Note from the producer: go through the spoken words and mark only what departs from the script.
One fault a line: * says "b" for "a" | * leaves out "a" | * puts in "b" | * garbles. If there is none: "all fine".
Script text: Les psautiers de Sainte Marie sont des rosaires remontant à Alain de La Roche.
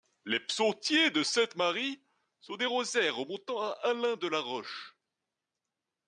all fine